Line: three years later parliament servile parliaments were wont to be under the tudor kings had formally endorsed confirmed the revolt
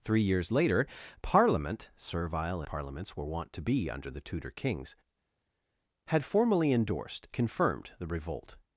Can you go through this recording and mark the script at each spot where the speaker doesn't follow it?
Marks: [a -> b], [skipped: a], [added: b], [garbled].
three years later parliament servile parliaments were wont to be under the tudor kings had formally endorsed confirmed the revolt